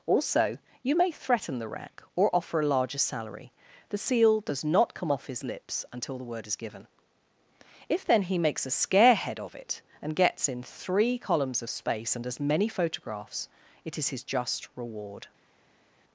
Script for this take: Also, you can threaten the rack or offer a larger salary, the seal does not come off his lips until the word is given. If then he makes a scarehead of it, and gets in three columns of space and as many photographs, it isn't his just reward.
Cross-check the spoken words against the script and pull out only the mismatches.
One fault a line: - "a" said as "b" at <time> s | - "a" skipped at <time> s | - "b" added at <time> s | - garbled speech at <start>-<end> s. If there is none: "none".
- "can" said as "may" at 0.9 s
- "isn't" said as "is" at 14.0 s